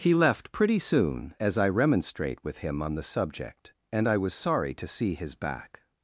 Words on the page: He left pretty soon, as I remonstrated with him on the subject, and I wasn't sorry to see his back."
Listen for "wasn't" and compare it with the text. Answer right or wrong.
wrong